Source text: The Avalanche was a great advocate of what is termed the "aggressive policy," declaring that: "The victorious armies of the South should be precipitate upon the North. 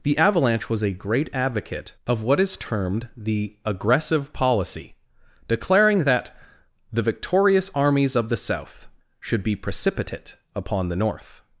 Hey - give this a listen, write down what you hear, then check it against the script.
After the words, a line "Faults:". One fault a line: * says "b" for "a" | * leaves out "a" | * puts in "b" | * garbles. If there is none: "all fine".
The Avalanche was a great advocate of what is termed the "aggressive policy," declaring that: "The victorious armies of the South should be precipitate upon the North.
Faults:
all fine